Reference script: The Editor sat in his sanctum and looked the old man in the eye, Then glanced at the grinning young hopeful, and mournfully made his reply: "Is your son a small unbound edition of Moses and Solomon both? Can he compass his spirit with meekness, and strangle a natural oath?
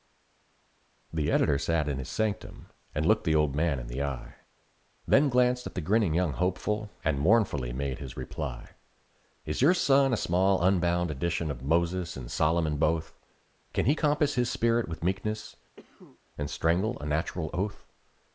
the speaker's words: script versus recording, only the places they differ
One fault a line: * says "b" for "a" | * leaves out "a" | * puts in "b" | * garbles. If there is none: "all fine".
all fine